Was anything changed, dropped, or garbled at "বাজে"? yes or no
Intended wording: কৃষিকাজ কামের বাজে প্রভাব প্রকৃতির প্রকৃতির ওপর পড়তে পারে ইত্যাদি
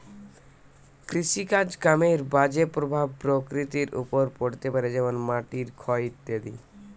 no